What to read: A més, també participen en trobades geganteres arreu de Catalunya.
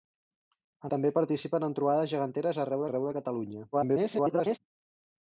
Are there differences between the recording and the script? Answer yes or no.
yes